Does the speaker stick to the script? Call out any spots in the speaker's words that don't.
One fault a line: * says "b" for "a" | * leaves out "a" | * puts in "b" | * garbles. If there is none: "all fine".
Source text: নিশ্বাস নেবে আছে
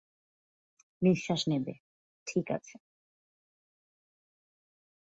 * puts in "ঠিক"